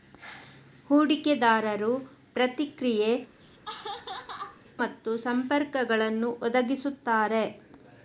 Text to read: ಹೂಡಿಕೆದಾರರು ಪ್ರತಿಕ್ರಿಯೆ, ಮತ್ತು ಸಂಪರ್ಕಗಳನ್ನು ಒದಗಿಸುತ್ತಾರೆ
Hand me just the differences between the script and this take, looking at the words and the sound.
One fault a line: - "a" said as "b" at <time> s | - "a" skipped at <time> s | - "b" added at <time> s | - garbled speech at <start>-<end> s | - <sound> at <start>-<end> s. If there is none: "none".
- laugh at 3.4-4.6 s